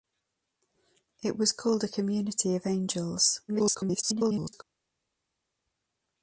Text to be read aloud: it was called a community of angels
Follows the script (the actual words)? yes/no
no